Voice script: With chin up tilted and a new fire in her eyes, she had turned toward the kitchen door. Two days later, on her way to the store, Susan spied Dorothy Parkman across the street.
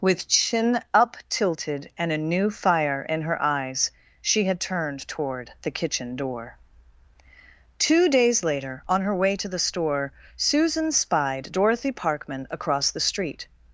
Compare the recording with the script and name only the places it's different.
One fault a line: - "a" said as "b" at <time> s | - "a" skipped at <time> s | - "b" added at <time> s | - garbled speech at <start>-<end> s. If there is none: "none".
none